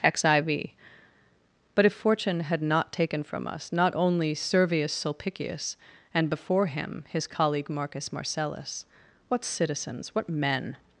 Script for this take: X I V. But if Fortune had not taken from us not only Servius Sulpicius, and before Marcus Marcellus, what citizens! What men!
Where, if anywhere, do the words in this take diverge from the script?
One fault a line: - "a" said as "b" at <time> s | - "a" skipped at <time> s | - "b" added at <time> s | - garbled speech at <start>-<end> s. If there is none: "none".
- "him his colleague" added at 6.7 s